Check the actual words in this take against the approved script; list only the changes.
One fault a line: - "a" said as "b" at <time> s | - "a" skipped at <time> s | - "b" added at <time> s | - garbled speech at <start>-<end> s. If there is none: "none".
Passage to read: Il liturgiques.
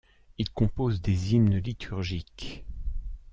- "compose des hymnes" added at 0.5 s